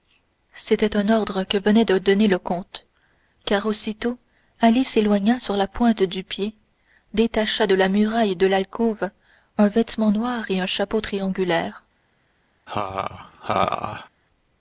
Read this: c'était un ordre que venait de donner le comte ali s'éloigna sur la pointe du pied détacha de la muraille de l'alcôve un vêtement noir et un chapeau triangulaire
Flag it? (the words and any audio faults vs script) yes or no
yes